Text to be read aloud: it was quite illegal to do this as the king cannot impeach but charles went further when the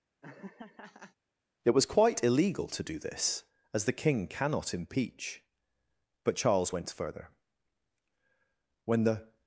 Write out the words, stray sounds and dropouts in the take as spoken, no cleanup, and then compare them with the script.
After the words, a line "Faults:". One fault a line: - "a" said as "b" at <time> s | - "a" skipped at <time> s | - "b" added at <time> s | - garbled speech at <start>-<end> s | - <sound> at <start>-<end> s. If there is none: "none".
it was quite illegal to do this as the king cannot impeach but charles went further when the
Faults:
- laugh at 0.2-1.2 s